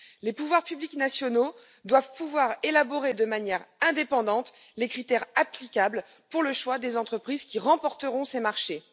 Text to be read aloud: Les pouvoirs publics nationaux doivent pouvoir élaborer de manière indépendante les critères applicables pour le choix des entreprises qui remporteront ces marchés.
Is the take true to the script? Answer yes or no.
yes